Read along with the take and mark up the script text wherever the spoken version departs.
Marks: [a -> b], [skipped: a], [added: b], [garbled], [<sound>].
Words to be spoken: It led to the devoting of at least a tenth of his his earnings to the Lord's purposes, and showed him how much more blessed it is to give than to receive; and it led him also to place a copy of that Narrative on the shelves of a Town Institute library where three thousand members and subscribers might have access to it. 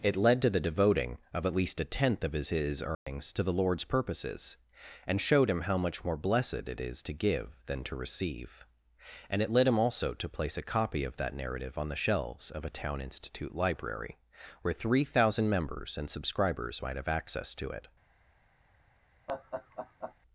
It led to the devoting of at least a tenth of his his earnings [dropout] to the Lord's purposes, and showed him how much more blessed it is to give than to receive; and it led him also to place a copy of that Narrative on the shelves of a Town Institute library where three thousand members and subscribers might have access to it. [laugh]